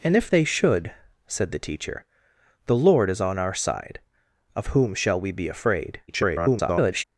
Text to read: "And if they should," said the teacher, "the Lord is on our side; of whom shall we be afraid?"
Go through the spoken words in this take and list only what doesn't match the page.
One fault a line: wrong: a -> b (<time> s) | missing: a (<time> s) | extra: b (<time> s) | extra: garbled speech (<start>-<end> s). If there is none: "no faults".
extra: garbled speech (6.1-7.0 s)